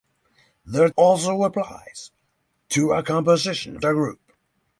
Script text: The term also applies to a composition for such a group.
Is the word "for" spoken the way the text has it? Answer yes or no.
no